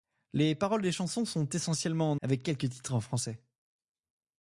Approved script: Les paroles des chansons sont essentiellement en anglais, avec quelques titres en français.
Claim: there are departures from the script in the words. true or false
true